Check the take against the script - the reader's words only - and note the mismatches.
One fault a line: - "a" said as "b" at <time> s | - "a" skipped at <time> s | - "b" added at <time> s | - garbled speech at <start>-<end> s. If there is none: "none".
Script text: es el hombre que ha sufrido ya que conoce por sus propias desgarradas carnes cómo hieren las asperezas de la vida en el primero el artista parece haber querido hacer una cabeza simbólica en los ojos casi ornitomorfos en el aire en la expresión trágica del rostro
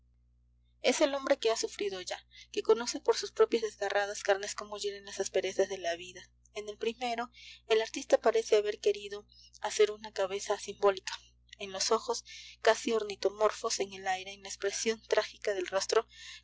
none